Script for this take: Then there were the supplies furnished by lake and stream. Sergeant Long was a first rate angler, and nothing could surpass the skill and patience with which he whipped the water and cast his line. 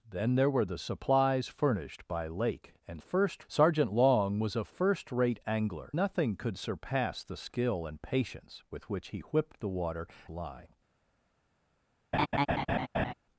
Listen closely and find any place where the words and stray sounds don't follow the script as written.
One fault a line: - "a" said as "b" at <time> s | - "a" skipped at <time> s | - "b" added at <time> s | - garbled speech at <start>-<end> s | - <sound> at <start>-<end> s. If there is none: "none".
- "stream" said as "first" at 3.0 s
- "and" skipped at 5.9 s
- "and cast his" skipped at 10.1 s
- laugh at 12.1-13.1 s